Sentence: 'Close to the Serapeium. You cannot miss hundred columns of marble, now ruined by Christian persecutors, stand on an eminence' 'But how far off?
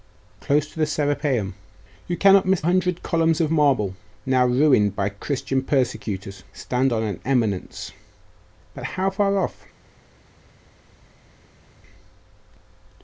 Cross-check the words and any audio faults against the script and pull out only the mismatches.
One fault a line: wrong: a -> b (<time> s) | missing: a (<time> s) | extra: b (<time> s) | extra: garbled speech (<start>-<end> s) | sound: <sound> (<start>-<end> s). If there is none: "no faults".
no faults